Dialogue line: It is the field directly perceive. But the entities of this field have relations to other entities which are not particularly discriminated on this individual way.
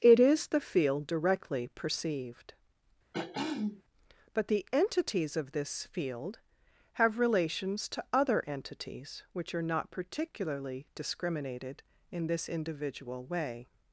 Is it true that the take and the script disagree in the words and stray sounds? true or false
true